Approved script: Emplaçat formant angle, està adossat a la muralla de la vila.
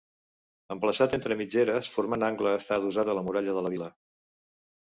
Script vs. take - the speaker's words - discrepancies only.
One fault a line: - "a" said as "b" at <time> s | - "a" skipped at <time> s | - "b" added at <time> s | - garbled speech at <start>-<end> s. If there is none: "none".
- "entre mitgeres" added at 1.2 s